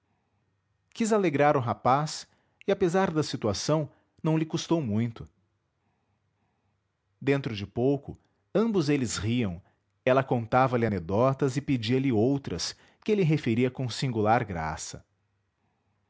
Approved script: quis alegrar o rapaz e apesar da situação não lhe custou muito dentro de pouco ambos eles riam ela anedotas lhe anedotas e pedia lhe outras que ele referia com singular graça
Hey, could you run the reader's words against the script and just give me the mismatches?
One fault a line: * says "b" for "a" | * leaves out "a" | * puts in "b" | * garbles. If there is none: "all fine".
* says "contava" for "anedotas"